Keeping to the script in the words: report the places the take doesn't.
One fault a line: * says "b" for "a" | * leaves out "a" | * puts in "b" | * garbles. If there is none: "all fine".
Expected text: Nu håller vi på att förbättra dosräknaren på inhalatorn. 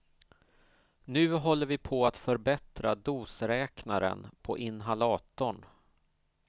all fine